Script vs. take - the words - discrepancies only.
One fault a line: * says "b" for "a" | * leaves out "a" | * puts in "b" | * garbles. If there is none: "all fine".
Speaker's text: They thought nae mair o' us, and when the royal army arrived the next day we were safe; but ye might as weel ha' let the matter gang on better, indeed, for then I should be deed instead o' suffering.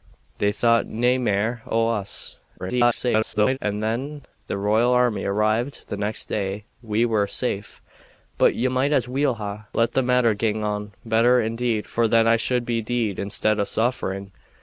* garbles